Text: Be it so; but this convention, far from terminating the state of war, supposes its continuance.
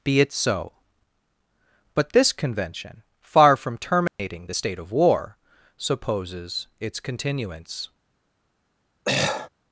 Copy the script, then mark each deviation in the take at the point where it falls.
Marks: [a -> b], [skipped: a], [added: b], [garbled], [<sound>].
Be it so; but this convention, far from terminating [dropout] the state of war, supposes its continuance. [throat clearing]